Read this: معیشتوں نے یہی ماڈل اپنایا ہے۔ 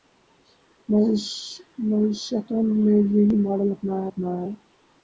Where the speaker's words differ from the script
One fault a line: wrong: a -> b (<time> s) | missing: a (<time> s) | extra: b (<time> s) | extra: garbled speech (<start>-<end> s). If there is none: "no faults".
extra: اپنایا (4.1 s)